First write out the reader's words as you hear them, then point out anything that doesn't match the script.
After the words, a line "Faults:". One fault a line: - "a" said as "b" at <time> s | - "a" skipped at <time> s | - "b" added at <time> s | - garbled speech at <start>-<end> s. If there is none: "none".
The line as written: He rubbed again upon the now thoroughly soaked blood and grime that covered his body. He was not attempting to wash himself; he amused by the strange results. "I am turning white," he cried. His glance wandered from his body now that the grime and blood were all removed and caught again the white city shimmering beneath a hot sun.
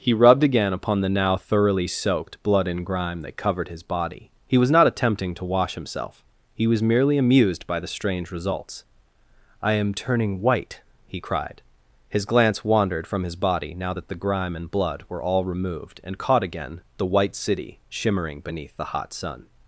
He rubbed again upon the now thoroughly soaked blood and grime that covered his body. He was not attempting to wash himself; he was merely amused by the strange results. "I am turning white," he cried. His glance wandered from his body now that the grime and blood were all removed and caught again the white city shimmering beneath the hot sun.
Faults:
- "was merely" added at 6.7 s
- "a" said as "the" at 18.8 s